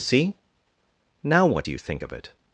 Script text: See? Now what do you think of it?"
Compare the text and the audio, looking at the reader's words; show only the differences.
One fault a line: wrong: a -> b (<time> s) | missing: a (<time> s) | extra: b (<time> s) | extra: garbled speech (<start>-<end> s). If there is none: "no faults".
no faults